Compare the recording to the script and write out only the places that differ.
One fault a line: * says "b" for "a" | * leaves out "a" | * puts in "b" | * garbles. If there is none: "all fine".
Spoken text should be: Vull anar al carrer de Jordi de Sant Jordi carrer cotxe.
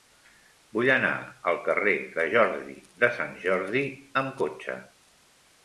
* says "amb" for "carrer"